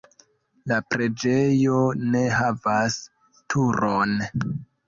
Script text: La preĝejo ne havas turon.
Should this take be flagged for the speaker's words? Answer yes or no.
no